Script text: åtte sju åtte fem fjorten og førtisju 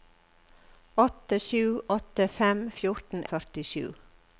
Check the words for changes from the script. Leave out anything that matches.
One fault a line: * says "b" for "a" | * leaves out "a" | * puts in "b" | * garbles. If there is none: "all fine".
all fine